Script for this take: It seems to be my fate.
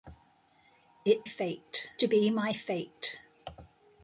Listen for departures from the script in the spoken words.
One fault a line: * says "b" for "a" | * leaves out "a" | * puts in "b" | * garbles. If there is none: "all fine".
* says "fate" for "seems"